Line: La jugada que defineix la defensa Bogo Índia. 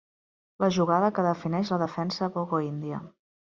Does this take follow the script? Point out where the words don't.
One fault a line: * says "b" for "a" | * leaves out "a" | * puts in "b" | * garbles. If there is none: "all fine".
all fine